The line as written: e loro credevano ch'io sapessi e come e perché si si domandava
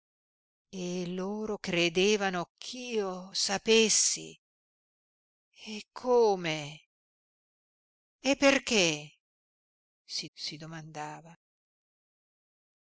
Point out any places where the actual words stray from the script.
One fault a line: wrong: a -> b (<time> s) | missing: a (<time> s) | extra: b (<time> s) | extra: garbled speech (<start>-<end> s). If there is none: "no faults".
no faults